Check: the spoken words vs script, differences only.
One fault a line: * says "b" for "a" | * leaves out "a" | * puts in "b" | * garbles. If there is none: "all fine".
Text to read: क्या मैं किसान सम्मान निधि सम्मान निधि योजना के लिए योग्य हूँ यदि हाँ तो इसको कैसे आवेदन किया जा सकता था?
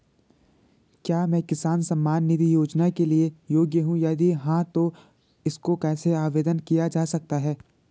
* leaves out "सम्मान निधि"
* says "है" for "था"